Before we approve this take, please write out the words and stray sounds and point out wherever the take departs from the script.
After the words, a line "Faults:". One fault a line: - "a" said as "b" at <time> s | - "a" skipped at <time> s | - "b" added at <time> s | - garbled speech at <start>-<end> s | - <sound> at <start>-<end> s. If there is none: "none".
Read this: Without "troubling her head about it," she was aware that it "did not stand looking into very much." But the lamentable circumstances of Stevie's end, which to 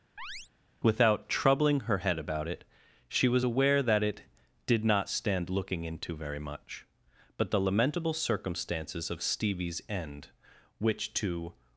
Without "troubling her head about it," she was aware that it "did not stand looking into very much." But the lamentable circumstances of Stevie's end, which to
Faults:
- chirp at 0.2-0.5 s